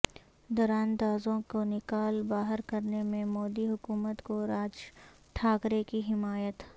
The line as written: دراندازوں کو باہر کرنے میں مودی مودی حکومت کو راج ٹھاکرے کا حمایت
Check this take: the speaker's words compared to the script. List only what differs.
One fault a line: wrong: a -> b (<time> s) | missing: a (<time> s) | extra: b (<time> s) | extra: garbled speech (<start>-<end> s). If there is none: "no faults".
extra: نکال (1.6 s)
missing: مودی (3.7 s)
wrong: کا -> کی (5.9 s)